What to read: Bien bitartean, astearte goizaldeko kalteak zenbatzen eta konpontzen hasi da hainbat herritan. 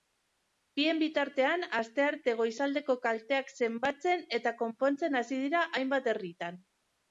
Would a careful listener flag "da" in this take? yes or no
yes